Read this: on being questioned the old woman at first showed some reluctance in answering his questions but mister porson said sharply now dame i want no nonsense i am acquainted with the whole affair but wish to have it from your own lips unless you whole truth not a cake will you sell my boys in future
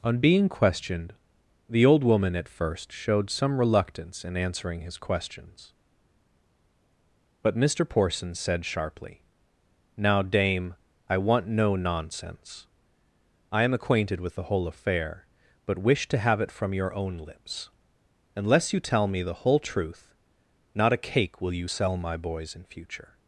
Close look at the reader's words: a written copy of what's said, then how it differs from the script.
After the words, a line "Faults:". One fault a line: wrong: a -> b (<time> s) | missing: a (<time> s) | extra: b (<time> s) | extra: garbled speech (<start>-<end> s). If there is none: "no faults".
on being questioned the old woman at first showed some reluctance in answering his questions but mister porson said sharply now dame i want no nonsense i am acquainted with the whole affair but wish to have it from your own lips unless you tell me the whole truth not a cake will you sell my boys in future
Faults:
extra: tell me the (18.8 s)